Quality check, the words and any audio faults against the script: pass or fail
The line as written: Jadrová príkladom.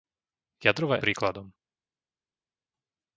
pass